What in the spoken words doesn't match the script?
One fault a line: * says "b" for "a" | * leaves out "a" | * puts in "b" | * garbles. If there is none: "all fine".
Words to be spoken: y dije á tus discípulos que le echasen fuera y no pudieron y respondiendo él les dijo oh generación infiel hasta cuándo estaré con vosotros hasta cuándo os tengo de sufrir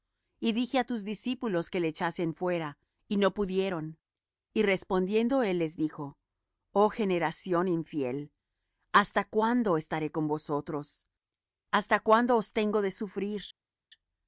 all fine